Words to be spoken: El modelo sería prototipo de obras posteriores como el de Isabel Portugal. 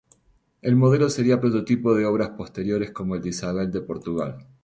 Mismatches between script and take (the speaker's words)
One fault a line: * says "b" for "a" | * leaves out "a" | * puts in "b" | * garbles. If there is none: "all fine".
* puts in "de"